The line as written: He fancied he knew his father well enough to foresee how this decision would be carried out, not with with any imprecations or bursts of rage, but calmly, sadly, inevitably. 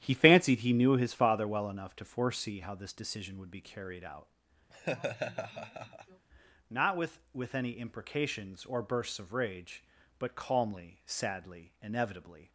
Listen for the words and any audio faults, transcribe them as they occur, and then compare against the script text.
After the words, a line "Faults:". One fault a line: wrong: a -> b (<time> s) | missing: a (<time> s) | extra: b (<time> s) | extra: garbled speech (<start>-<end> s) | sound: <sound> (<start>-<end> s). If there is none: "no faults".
He fancied he knew his father well enough to foresee how this decision would be carried out, not with with any imprecations or bursts of rage, but calmly, sadly, inevitably.
Faults:
sound: laugh (4.7-6.2 s)